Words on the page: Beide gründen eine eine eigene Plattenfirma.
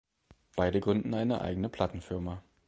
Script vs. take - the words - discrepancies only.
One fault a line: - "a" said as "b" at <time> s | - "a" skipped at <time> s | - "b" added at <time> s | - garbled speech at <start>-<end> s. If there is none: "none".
- "eine" skipped at 1.4 s